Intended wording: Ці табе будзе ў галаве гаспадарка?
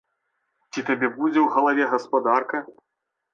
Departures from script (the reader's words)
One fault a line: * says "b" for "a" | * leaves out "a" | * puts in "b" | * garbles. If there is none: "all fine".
all fine